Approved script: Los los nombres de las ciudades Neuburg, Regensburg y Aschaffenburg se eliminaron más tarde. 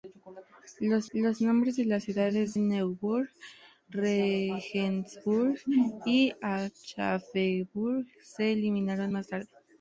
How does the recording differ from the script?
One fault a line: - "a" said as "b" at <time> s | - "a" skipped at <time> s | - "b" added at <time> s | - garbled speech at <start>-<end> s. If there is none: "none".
none